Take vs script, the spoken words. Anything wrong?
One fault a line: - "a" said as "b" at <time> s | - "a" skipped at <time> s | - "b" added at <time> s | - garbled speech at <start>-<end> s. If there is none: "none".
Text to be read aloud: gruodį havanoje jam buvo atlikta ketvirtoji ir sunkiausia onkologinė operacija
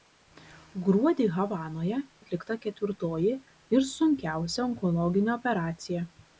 - "jam buvo" skipped at 2.0 s